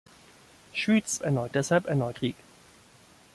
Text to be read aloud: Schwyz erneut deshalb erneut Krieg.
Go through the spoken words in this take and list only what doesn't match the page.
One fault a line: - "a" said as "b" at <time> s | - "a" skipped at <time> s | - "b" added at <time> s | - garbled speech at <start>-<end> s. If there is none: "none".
none